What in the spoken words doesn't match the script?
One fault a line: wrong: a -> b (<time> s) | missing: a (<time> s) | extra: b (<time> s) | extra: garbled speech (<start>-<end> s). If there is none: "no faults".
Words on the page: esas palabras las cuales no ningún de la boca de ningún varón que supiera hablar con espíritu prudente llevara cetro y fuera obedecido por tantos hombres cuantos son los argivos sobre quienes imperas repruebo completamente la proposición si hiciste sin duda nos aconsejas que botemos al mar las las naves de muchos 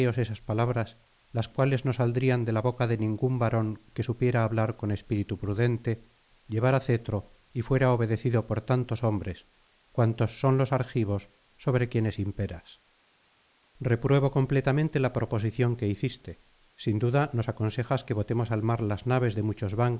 wrong: ningún -> saldrían (1.9 s)
wrong: si -> que (15.8 s)
missing: las (19.1 s)